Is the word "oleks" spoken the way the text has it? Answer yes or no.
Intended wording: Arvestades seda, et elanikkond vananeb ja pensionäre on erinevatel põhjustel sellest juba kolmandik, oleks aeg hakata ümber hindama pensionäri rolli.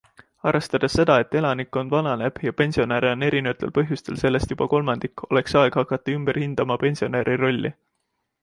yes